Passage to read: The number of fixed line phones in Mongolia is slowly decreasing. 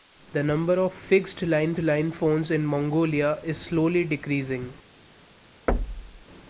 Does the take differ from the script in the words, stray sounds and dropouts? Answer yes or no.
yes